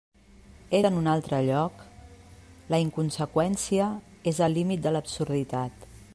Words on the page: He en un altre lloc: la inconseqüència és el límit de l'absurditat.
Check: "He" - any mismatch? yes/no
no